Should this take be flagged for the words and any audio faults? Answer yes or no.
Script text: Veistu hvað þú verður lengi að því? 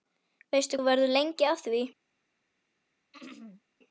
yes